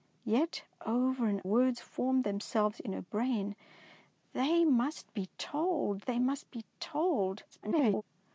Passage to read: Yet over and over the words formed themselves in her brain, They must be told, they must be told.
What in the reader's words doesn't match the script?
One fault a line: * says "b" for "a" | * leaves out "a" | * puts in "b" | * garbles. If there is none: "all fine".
* leaves out "over the"
* garbles